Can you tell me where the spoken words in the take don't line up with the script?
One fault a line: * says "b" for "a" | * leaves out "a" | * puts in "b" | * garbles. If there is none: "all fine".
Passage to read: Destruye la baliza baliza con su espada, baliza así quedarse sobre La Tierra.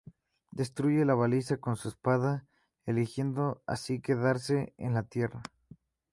* leaves out "baliza"
* says "eligiendo" for "baliza"
* says "en" for "sobre"